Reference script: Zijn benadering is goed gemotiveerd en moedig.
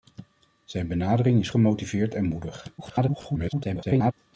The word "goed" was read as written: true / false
false